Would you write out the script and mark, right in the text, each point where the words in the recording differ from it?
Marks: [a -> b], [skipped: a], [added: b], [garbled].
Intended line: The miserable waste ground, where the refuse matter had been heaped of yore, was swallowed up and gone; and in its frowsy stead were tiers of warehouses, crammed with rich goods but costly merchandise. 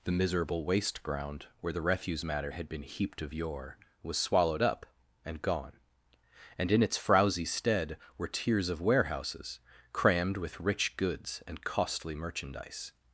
The miserable waste ground, where the refuse matter had been heaped of yore, was swallowed up and gone; and in its frowsy stead were tiers of warehouses, crammed with rich goods [but -> and] costly merchandise.